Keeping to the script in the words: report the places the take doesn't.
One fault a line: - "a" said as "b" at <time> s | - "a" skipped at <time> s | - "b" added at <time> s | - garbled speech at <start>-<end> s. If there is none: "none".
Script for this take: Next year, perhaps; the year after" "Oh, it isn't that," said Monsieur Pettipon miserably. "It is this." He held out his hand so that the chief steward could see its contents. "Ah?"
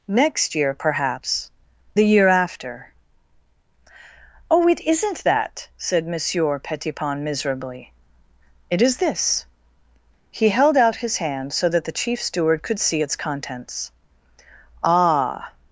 none